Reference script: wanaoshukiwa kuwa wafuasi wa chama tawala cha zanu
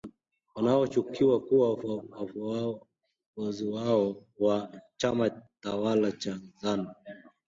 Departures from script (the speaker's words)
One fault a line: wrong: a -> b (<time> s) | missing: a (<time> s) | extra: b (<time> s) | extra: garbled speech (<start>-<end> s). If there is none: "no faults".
no faults